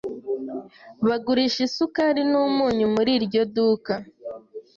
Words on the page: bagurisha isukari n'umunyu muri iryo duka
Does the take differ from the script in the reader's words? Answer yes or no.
no